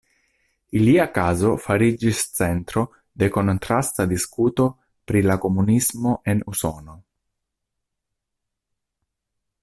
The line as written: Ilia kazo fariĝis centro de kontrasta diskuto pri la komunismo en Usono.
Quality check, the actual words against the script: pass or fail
pass